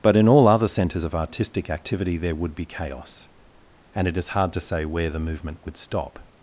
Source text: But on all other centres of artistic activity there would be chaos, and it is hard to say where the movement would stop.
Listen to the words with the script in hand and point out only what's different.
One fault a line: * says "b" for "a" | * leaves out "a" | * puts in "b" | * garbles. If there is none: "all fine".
* says "in" for "on"